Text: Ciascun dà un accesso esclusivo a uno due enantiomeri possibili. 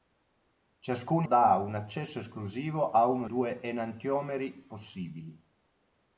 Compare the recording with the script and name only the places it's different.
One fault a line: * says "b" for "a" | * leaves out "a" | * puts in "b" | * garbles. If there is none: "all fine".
all fine